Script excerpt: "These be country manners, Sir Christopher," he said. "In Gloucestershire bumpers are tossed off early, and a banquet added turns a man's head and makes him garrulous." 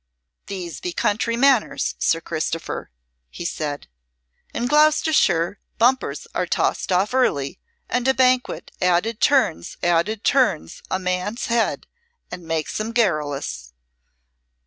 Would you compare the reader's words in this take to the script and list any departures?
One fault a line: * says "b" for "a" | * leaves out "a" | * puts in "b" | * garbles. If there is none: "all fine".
* puts in "added turns"